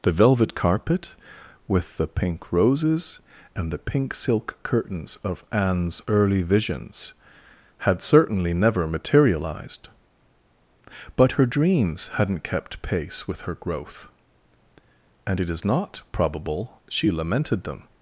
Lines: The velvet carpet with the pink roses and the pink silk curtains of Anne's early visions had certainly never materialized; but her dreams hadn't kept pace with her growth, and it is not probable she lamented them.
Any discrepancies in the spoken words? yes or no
no